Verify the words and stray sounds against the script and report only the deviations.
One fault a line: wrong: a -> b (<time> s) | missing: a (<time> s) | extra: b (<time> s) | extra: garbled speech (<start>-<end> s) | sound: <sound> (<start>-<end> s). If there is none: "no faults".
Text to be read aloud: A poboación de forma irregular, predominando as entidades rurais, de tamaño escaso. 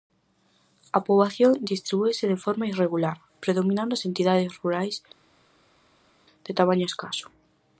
extra: distribúese (1.7 s)